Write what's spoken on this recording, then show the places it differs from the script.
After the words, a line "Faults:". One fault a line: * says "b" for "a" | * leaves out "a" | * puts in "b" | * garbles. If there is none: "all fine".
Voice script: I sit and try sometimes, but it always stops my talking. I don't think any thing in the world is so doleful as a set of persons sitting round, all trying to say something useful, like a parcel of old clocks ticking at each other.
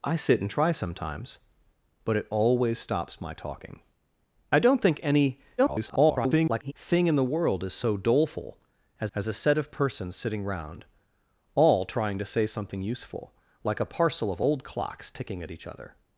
I sit and try sometimes, but it always stops my talking. I don't think any [garbled] thing in the world is so doleful as as a set of persons sitting round, all trying to say something useful, like a parcel of old clocks ticking at each other.
Faults:
* garbles
* puts in "as"